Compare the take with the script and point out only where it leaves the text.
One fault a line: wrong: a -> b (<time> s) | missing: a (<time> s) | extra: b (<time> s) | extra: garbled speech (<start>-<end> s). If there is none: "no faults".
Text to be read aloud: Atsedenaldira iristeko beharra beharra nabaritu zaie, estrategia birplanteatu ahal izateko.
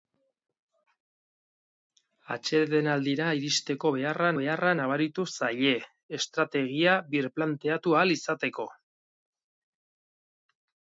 no faults